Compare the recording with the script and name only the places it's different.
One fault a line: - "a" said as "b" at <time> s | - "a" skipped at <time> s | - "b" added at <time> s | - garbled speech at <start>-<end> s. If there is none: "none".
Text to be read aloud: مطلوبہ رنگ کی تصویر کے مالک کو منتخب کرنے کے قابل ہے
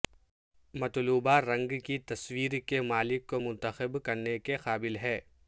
none